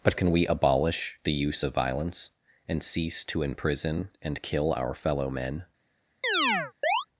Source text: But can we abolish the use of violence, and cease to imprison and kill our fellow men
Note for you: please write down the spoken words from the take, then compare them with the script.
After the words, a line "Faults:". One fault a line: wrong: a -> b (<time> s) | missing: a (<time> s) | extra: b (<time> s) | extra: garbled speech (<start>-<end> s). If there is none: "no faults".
But can we abolish the use of violence, and cease to imprison and kill our fellow men
Faults:
no faults